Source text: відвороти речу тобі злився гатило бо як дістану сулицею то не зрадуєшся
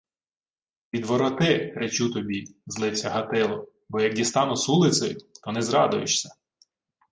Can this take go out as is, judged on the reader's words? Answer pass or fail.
pass